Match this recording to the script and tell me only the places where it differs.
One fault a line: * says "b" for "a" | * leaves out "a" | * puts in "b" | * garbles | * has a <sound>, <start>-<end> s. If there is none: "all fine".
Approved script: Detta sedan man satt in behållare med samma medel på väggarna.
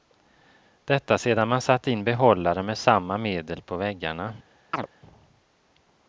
* has a chirp, 4.7-4.9 s